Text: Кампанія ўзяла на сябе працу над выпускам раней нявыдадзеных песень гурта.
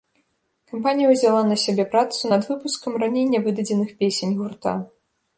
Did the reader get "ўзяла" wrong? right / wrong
right